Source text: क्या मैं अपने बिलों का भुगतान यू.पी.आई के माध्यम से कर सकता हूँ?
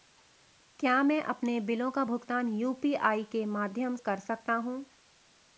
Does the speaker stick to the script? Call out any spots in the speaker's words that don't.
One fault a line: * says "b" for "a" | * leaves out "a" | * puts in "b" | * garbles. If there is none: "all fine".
* leaves out "से"